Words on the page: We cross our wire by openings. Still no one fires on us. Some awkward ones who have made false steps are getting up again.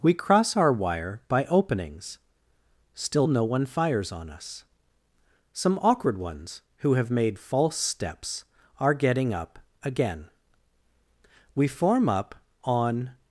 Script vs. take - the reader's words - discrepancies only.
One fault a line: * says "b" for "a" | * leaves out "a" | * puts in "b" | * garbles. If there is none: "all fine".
* puts in "We form up on"